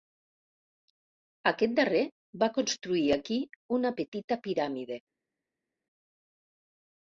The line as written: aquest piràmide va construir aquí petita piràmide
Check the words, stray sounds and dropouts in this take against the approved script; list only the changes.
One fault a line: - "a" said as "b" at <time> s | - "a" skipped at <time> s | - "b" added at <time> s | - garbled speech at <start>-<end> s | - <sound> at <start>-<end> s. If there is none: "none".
- "piràmide" said as "darrer" at 1.8 s
- "una" added at 3.8 s